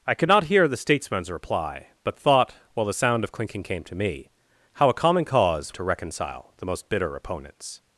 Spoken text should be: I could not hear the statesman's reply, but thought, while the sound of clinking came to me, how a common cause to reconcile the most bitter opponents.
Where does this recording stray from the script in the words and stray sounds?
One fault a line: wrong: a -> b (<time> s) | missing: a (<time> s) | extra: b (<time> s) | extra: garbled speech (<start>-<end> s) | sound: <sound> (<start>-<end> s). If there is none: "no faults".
no faults